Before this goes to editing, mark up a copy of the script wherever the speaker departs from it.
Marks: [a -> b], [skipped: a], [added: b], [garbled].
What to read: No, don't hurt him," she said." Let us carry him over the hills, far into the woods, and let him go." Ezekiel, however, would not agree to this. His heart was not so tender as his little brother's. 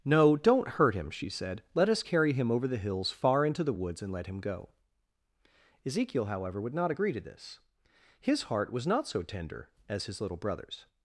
No, don't hurt him," she said." Let us carry him over the hills, far into the woods, and let him go." Ezekiel, however, would not agree to this. His heart was not so tender as his little brother's.